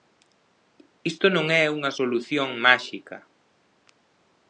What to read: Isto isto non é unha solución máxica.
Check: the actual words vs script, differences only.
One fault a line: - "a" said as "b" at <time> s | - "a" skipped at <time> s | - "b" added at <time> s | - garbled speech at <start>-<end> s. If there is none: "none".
- "isto" skipped at 1.2 s